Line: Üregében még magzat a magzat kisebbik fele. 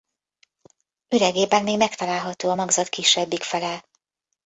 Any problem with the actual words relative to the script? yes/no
yes